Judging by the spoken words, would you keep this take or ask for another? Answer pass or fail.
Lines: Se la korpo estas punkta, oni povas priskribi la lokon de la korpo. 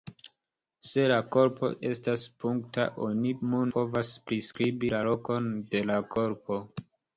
pass